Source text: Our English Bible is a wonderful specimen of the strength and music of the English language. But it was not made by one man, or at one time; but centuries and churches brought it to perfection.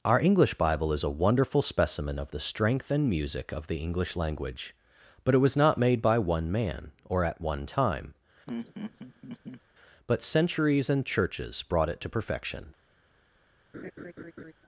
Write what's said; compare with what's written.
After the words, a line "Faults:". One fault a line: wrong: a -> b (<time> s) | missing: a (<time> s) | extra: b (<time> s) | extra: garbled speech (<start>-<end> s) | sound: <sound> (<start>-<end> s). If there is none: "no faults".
Our English Bible is a wonderful specimen of the strength and music of the English language. But it was not made by one man, or at one time; but centuries and churches brought it to perfection.
Faults:
sound: laugh (8.5-9.6 s)
sound: laugh (13.7-14.5 s)